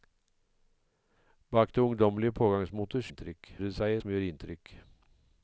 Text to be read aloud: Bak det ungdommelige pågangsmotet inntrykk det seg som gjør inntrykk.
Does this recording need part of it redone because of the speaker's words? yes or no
no